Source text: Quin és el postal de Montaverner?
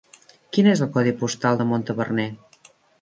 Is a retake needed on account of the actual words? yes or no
yes